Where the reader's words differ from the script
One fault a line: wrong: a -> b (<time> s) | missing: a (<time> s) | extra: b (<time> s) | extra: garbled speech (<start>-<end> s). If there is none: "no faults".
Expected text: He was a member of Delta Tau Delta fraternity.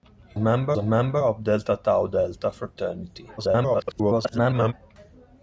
wrong: was -> member (0.4 s)
extra: garbled speech (3.4-4.7 s)